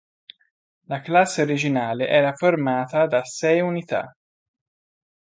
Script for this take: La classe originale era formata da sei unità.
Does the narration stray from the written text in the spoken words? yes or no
no